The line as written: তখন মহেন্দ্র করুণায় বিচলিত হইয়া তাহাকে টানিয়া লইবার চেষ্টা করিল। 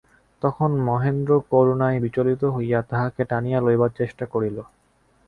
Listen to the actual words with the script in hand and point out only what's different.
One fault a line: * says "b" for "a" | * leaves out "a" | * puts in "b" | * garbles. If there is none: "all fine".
all fine